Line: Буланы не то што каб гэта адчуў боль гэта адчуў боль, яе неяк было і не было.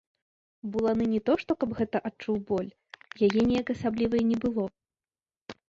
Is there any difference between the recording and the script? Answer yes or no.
yes